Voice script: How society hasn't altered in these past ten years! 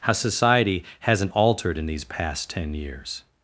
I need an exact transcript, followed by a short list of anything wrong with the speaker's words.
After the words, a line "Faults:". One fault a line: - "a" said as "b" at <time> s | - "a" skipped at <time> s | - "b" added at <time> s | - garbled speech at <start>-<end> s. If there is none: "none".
How society hasn't altered in these past ten years!
Faults:
none